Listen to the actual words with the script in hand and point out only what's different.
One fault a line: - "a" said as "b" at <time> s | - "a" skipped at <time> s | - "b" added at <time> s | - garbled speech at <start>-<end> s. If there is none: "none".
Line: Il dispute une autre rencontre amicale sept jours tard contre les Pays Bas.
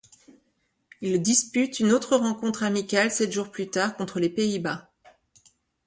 - "plus" added at 3.5 s